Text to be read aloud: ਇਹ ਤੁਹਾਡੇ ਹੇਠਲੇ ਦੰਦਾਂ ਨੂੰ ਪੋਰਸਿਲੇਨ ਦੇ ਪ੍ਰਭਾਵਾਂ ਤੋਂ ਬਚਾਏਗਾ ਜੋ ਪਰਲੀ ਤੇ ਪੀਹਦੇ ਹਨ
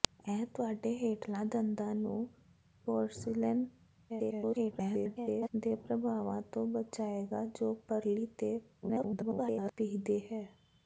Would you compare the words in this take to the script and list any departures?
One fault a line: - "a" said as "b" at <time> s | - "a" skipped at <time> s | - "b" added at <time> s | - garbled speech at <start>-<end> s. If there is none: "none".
- garbled speech at 4.1-5.5 s
- garbled speech at 8.8-9.7 s